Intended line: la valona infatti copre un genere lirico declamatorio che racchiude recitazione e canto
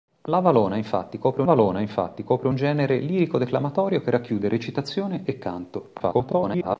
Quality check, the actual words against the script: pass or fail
fail